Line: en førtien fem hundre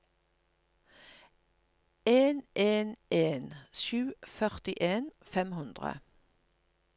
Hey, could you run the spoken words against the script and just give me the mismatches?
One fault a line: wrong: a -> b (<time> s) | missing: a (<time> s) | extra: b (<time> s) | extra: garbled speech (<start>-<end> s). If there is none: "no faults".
extra: en en sju (2.5 s)